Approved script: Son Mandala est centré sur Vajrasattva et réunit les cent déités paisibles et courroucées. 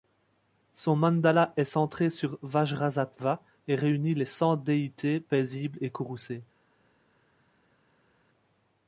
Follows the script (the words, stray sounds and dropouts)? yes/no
yes